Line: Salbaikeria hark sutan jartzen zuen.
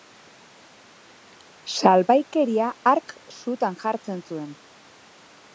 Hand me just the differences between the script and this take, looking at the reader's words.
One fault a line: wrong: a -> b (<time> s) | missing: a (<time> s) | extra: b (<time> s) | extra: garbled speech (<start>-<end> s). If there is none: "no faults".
no faults